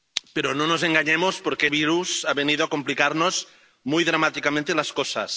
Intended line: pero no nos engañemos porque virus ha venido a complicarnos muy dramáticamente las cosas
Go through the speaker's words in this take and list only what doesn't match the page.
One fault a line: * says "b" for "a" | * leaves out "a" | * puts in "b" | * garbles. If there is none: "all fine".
all fine